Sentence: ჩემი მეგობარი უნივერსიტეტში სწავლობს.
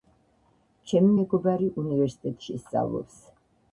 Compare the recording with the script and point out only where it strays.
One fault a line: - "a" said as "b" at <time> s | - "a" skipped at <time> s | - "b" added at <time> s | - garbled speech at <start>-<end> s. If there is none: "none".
none